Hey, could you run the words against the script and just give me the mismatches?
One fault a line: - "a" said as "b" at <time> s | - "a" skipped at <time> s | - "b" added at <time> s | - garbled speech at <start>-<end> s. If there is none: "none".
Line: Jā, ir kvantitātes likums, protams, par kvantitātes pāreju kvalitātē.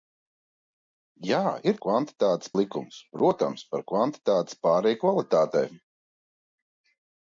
none